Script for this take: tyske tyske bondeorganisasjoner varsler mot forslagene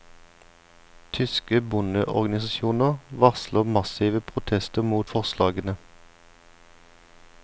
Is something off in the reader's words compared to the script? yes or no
yes